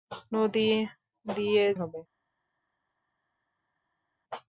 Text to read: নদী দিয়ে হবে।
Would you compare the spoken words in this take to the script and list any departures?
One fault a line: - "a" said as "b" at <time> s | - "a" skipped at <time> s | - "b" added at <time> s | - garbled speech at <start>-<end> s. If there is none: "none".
none